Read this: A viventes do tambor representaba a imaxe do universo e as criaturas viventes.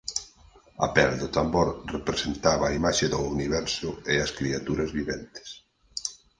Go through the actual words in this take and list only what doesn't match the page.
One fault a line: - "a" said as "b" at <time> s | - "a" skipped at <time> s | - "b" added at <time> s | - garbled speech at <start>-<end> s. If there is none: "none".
- "viventes" said as "pel" at 0.9 s